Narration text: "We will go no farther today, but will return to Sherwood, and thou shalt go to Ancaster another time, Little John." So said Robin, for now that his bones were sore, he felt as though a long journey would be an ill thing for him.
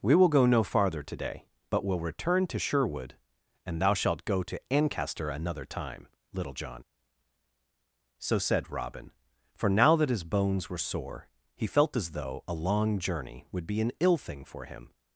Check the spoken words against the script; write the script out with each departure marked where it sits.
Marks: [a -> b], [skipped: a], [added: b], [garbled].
"We will go no farther today, but will return to Sherwood, and thou shalt go to Ancaster another time, Little John." So said Robin, for now that his bones were sore, he felt as though a long journey would be an ill thing for him.